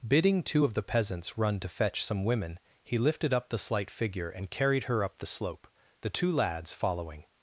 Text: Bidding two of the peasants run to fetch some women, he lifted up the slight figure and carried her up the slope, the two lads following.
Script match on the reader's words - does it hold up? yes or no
yes